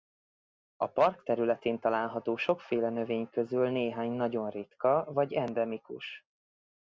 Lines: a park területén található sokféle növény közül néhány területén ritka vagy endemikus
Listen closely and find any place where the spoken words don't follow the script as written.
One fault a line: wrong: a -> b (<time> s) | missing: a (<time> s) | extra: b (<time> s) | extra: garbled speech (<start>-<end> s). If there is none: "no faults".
wrong: területén -> nagyon (4.1 s)